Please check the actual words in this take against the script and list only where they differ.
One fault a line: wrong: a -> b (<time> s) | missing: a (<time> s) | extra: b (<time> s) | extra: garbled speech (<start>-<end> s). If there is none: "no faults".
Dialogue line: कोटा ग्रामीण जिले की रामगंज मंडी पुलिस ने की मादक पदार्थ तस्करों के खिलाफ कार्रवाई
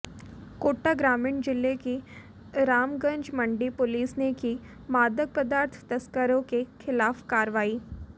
no faults